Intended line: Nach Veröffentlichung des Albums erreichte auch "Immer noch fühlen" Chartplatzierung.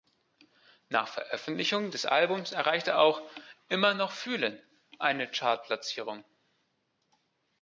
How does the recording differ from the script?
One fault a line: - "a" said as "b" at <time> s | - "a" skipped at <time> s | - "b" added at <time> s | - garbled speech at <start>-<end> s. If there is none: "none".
- "eine" added at 5.0 s